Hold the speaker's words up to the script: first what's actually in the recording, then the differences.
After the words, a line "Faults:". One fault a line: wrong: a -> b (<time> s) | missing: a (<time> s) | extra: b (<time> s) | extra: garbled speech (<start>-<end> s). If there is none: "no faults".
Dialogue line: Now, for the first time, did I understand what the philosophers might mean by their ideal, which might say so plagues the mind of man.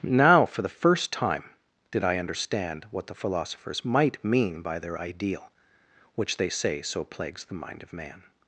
Now, for the first time, did I understand what the philosophers might mean by their ideal, which they say so plagues the mind of man.
Faults:
wrong: might -> they (6.4 s)